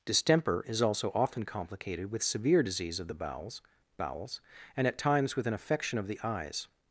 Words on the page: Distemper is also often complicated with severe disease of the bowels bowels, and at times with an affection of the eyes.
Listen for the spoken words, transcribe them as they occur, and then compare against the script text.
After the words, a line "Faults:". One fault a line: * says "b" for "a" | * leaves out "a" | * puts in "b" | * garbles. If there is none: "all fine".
Distemper is also often complicated with severe disease of the bowels bowels, and at times with an affection of the eyes.
Faults:
all fine